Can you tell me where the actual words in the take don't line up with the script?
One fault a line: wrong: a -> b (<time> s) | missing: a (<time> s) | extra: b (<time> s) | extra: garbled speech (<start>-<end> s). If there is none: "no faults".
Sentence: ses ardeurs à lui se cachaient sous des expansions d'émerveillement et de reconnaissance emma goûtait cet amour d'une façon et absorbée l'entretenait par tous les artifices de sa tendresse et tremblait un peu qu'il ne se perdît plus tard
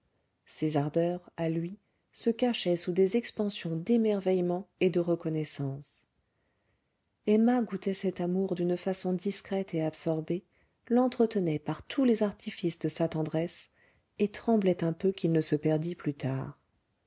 extra: discrète (9.1 s)